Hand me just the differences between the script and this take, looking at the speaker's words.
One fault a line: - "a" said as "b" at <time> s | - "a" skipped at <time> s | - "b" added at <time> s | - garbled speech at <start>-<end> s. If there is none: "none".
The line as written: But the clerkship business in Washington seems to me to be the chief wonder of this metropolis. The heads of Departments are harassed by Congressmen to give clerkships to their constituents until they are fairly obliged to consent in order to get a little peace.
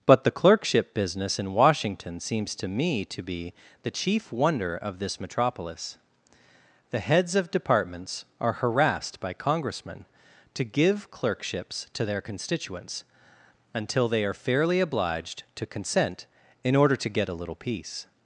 none